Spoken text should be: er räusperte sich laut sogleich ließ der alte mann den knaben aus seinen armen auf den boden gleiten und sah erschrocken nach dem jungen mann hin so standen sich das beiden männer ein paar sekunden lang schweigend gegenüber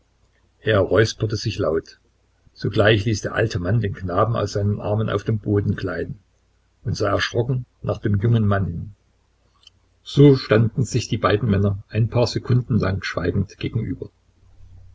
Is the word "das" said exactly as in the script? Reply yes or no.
no